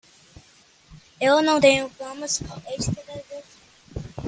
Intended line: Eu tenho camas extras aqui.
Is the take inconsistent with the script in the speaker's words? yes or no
yes